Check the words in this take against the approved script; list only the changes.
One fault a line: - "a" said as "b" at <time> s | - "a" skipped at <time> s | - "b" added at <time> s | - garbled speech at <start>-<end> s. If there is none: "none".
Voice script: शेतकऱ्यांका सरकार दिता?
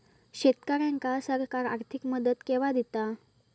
- "आर्थिक मदत केवा" added at 1.6 s